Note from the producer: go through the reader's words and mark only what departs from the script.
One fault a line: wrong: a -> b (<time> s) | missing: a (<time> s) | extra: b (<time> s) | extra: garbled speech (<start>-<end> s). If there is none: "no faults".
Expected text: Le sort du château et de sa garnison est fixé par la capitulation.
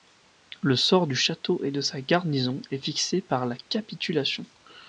no faults